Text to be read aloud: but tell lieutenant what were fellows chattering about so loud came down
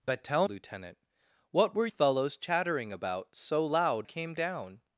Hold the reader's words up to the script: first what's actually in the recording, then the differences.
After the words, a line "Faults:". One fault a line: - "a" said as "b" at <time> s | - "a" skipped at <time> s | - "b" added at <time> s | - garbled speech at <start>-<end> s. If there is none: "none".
but tell lieutenant what were fellows chattering about so loud came down
Faults:
none